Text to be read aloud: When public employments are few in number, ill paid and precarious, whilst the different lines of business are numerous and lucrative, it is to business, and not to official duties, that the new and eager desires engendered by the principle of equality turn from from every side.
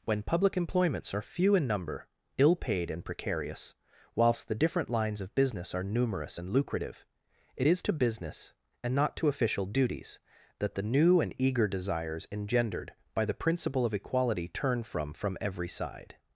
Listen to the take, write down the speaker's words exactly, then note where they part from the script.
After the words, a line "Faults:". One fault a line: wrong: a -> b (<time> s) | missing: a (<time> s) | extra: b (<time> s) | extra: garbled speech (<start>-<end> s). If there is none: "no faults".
When public employments are few in number, ill paid and precarious, whilst the different lines of business are numerous and lucrative, it is to business, and not to official duties, that the new and eager desires engendered by the principle of equality turn from from every side.
Faults:
no faults